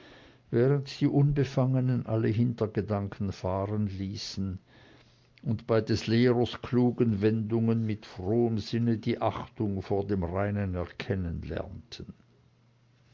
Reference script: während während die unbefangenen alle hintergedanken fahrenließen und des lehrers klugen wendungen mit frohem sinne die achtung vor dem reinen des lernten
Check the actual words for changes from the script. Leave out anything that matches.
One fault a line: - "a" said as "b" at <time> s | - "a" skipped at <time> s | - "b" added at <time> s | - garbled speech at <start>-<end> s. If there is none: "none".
- "während" skipped at 1.0 s
- "bei" added at 5.7 s
- "des" said as "erkennen" at 10.7 s